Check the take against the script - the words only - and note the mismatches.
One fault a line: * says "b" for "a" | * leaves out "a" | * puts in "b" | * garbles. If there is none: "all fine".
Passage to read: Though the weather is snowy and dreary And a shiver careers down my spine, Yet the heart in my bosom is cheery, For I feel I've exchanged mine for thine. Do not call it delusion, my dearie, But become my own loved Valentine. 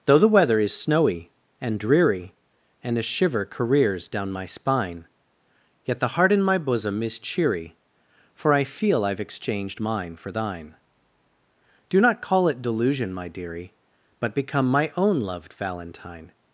all fine